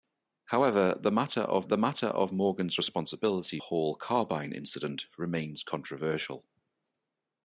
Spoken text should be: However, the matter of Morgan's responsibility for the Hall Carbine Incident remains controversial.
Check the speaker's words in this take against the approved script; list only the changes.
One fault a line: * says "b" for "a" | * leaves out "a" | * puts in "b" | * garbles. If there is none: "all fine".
* puts in "the matter of"
* leaves out "for the"